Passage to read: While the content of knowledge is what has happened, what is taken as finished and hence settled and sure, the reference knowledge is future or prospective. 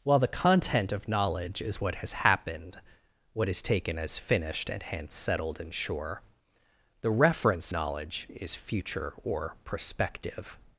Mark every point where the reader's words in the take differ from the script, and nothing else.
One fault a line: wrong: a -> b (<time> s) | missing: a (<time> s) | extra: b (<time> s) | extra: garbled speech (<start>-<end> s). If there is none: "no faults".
no faults